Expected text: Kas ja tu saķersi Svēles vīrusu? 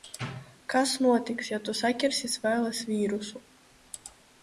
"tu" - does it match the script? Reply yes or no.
yes